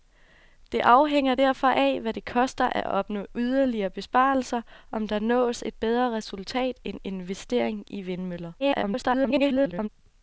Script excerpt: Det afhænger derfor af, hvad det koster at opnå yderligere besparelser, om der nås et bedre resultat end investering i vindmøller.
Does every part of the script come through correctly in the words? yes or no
no